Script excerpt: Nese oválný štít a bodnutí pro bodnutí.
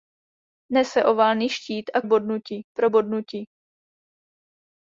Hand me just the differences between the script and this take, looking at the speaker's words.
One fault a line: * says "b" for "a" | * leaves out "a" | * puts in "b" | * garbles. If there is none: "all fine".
all fine